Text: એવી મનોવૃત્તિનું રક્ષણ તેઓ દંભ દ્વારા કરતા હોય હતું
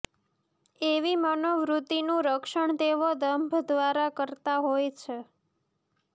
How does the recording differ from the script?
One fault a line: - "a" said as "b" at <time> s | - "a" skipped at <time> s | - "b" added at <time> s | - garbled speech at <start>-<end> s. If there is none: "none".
- "હતું" said as "છે" at 5.0 s